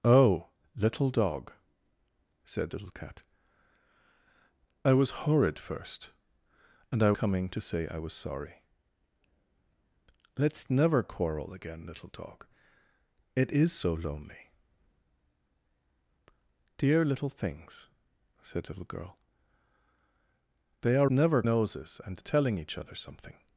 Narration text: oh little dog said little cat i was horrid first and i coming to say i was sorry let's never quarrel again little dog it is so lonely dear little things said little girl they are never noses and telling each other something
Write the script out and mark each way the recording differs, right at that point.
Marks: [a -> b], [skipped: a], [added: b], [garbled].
oh little dog said little cat i was horrid first and i coming to say i was sorry let's never quarrel again little dog it is so lonely dear little things said little girl they are never noses and telling each other something